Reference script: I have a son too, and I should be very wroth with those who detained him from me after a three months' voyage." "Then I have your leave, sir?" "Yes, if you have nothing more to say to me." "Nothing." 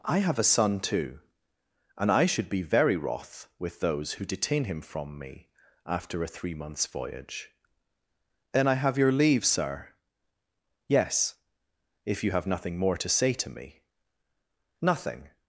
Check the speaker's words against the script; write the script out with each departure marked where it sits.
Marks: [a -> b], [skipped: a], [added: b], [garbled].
I have a son too, and I should be very wroth with those who [detained -> detain] him from me after a three months' voyage." "Then I have your leave, sir?" "Yes, if you have nothing more to say to me." "Nothing."